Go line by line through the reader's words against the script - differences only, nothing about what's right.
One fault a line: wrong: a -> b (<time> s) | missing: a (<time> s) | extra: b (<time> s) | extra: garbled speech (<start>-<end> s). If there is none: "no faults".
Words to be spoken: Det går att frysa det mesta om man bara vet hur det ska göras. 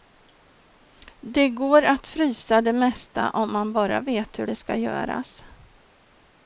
no faults